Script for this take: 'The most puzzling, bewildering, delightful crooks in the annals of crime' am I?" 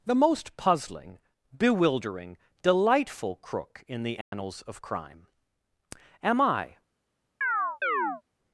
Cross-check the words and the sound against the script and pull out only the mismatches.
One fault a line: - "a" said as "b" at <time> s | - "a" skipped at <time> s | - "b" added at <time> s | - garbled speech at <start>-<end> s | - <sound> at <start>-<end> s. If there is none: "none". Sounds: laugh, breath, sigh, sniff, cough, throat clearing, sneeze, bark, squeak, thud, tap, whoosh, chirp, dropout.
- "crooks" said as "crook" at 3.4 s
- dropout at 4.2-4.3 s
- chirp at 7.4-8.2 s